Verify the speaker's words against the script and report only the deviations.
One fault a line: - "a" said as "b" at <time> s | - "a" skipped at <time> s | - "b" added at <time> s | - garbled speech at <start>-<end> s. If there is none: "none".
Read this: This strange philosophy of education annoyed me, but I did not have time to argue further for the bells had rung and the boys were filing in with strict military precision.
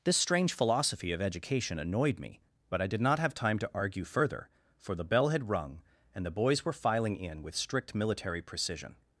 - "bells" said as "bell" at 5.0 s